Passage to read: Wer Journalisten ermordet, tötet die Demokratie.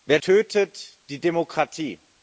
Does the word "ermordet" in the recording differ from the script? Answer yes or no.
yes